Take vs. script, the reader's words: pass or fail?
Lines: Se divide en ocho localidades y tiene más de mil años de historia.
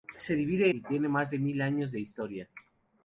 fail